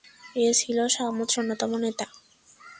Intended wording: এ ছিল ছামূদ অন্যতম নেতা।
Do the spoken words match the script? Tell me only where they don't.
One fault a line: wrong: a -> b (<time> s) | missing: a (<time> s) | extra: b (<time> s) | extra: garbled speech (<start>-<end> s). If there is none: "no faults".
no faults